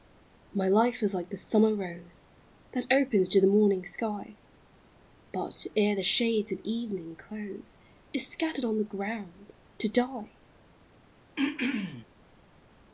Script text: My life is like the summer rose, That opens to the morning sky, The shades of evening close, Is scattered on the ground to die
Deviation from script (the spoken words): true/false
true